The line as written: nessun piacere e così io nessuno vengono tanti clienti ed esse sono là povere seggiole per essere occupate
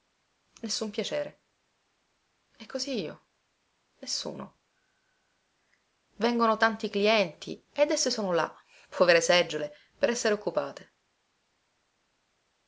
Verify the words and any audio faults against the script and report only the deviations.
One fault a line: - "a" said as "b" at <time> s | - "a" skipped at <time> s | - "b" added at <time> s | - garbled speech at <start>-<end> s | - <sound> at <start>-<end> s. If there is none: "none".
none